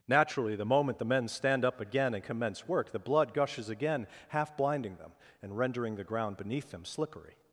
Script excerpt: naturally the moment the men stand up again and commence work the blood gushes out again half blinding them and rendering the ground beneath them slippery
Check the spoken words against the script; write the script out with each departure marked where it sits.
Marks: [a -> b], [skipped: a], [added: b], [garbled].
naturally the moment the men stand up again and commence work the blood gushes [skipped: out] again half blinding them and rendering the ground beneath them slippery